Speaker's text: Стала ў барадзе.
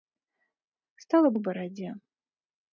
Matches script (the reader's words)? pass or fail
pass